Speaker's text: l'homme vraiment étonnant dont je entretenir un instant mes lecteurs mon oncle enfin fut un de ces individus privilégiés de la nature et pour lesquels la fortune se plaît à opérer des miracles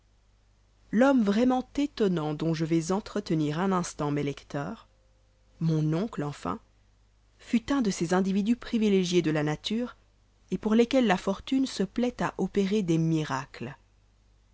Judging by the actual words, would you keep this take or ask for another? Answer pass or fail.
fail